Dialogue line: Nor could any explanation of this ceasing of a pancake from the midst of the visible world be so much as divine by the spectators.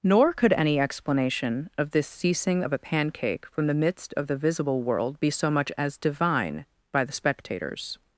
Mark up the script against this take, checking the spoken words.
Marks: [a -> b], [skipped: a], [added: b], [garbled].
Nor could any explanation of this ceasing of a pancake from the midst of the visible world be so much as divine by the spectators.